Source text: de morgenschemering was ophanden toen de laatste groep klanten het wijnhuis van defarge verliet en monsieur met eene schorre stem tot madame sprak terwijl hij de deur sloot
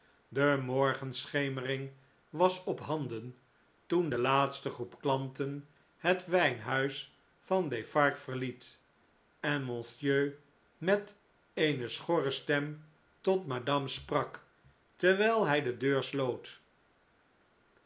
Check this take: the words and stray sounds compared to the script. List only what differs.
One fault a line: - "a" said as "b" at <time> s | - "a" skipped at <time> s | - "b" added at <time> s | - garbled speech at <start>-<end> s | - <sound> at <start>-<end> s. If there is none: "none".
none